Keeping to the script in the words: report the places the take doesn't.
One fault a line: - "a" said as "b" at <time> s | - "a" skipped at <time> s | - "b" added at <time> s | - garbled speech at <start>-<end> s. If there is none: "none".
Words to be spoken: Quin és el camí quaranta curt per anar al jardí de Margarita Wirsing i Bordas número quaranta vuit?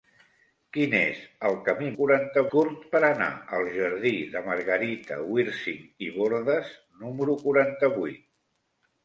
none